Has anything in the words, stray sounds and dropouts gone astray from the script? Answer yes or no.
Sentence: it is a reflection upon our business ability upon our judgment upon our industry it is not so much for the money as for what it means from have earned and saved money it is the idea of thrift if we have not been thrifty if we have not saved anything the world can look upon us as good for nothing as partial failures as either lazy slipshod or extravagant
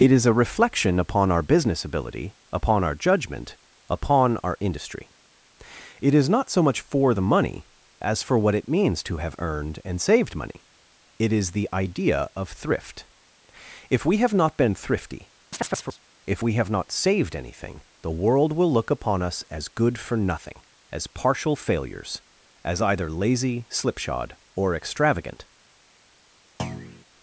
yes